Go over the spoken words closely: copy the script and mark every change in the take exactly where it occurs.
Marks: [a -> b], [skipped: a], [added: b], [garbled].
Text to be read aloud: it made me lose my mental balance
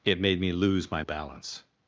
it made me lose my [skipped: mental] balance